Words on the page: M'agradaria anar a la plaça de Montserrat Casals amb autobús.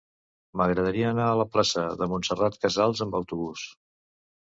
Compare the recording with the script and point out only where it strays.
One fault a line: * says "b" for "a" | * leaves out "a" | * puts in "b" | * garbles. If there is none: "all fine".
all fine